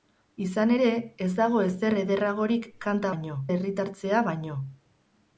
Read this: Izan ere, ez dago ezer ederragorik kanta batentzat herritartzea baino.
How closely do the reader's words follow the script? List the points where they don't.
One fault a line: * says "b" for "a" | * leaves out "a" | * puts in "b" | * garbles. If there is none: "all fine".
* says "baino" for "batentzat"